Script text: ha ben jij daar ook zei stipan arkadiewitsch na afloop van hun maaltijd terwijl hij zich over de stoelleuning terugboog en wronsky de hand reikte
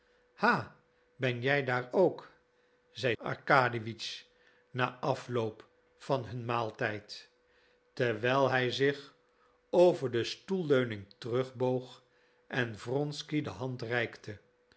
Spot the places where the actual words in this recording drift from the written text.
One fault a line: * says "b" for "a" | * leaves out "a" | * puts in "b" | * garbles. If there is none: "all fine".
* leaves out "stipan"